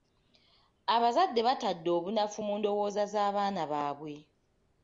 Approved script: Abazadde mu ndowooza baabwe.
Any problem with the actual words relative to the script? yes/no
yes